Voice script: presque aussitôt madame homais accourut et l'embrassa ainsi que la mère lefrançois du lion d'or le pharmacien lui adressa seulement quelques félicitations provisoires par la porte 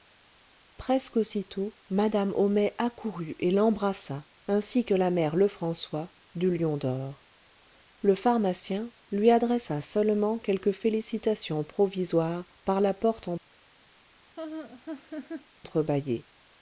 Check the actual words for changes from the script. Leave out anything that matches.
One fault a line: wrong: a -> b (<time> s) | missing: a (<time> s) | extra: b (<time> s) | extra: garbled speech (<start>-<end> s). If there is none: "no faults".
no faults